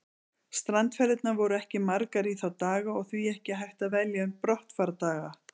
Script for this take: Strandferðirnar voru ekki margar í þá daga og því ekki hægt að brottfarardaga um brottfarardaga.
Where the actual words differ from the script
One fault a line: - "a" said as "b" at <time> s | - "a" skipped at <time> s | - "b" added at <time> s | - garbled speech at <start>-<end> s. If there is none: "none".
- "brottfarardaga" said as "velja" at 4.0 s